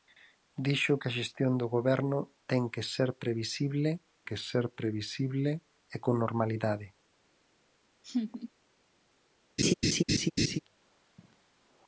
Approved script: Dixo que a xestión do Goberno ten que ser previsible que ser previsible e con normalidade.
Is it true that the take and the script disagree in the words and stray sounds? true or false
true